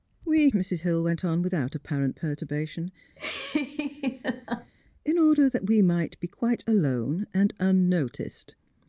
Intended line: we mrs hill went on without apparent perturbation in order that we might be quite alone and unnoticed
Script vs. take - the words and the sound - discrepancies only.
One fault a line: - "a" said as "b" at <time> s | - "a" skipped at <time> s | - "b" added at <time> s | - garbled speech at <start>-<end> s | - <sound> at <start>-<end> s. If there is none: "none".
- laugh at 3.2-4.7 s